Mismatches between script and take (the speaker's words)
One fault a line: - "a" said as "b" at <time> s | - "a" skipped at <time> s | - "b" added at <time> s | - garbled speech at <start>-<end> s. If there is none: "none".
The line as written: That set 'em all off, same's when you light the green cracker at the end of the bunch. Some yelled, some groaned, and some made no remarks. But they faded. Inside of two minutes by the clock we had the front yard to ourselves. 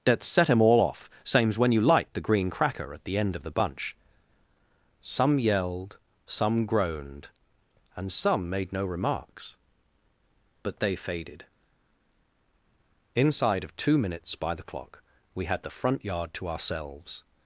none